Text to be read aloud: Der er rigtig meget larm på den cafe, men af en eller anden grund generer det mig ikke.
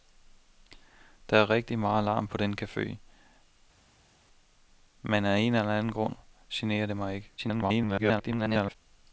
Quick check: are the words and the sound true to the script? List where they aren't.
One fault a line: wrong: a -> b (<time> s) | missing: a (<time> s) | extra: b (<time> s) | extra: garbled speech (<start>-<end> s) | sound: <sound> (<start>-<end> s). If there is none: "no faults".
extra: garbled speech (7.4-8.8 s)